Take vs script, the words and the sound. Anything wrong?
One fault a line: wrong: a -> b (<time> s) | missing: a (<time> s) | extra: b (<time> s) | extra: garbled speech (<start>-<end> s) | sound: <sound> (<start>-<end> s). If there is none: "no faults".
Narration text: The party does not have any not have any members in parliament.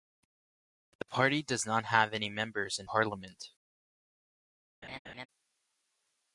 missing: not have any (2.3 s)
sound: laugh (4.8-5.3 s)